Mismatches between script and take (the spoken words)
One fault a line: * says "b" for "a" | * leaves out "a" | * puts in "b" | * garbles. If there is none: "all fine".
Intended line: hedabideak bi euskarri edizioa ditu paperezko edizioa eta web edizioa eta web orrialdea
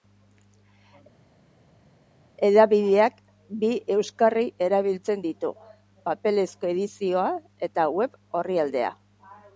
* says "erabiltzen" for "edizioa"
* leaves out "edizioa eta web"